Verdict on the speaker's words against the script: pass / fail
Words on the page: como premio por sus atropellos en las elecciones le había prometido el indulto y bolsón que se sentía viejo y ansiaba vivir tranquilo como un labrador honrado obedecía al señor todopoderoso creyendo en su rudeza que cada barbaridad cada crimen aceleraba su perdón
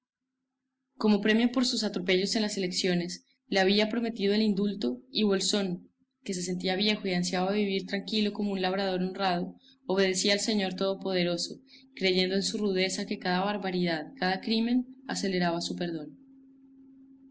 pass